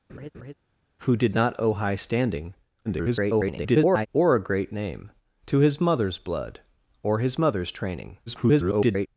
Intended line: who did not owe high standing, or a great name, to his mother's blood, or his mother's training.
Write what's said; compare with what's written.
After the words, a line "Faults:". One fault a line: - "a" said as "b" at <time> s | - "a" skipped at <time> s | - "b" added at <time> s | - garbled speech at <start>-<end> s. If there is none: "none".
who did not owe high standing, [garbled] or a great name, to his mother's blood, or his mother's training. [garbled]
Faults:
- garbled speech at 2.8-4.1 s
- garbled speech at 8.3-9.1 s